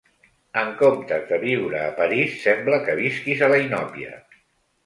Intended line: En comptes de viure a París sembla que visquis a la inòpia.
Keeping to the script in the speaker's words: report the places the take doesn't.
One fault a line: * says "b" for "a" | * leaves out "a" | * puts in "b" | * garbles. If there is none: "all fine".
all fine